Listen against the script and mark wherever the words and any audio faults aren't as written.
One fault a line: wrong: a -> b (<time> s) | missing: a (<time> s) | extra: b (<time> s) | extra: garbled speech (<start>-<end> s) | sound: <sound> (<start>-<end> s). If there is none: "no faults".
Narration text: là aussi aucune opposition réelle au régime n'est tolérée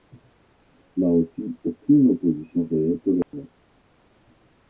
missing: au régime (3.0 s)
sound: dropout (3.2-3.3 s)